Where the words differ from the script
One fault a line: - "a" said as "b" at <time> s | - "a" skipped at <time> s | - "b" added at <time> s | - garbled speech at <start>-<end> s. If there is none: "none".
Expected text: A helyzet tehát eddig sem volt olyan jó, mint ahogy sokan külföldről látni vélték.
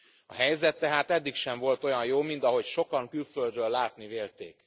none